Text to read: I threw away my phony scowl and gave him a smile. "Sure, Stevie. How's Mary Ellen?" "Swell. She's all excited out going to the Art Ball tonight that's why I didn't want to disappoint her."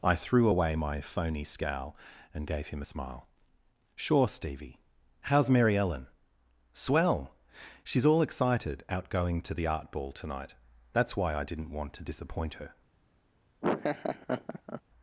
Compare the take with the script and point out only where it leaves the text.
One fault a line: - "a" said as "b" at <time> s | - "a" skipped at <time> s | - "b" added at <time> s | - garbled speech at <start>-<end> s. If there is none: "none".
none